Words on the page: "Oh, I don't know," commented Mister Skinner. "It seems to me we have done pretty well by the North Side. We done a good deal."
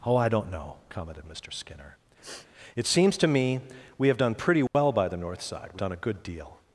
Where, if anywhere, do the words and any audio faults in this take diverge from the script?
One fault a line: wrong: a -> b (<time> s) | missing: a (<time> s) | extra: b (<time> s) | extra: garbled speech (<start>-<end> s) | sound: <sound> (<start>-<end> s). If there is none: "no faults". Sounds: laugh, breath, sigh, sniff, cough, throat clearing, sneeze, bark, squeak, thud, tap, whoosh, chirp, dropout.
sound: sniff (2.2-2.5 s)
sound: dropout (4.7-4.7 s)